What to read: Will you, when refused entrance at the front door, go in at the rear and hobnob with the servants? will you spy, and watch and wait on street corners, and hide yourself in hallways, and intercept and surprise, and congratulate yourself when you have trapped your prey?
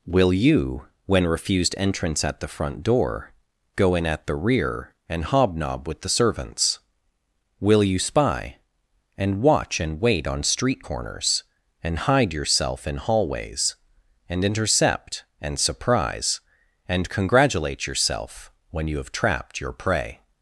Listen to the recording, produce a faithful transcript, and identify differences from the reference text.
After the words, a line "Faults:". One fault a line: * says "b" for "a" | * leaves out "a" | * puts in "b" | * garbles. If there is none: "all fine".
Will you, when refused entrance at the front door, go in at the rear and hobnob with the servants? will you spy, and watch and wait on street corners, and hide yourself in hallways, and intercept and surprise, and congratulate yourself when you have trapped your prey?
Faults:
all fine